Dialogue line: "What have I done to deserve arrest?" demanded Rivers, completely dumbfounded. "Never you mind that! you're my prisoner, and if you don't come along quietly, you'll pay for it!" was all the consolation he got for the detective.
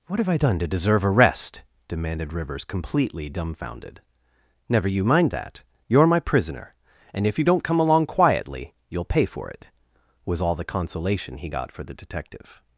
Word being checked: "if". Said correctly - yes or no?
yes